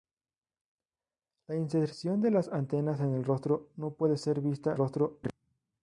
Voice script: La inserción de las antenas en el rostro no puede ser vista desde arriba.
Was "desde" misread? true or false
true